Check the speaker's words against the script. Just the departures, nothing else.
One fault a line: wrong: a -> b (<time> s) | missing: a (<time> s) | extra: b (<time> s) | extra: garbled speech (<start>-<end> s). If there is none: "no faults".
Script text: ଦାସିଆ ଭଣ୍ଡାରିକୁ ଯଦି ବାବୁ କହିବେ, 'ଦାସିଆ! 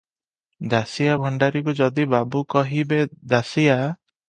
no faults